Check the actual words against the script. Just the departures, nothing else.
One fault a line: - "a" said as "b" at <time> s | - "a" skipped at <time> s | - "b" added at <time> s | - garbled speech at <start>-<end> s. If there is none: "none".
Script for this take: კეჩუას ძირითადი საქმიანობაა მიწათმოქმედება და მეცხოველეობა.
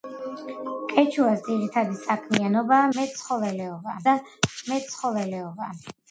- "მიწათმოქმედება" said as "მეცხოველეობა" at 3.0 s